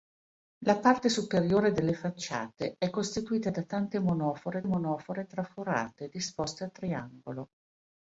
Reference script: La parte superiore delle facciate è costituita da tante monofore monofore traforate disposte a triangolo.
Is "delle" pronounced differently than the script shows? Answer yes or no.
no